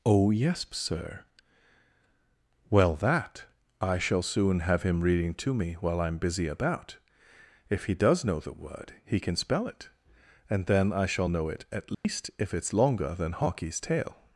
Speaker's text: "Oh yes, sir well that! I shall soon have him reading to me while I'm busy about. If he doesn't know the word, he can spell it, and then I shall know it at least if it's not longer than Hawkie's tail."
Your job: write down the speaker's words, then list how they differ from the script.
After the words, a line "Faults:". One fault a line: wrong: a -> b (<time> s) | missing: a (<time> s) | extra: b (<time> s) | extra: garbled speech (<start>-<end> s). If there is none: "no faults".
"Oh yes, sir well that! I shall soon have him reading to me while I'm busy about. If he does know the word, he can spell it, and then I shall know it at least if it's longer than Hawkie's tail."
Faults:
wrong: doesn't -> does (7.9 s)
missing: not (12.7 s)